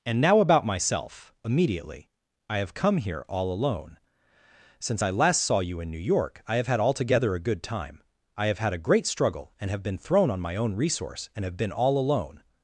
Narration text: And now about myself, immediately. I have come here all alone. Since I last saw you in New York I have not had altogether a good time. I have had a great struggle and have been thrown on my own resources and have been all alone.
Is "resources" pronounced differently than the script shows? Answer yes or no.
yes